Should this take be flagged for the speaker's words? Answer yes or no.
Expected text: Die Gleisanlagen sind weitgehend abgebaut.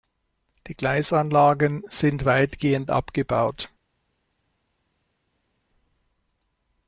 no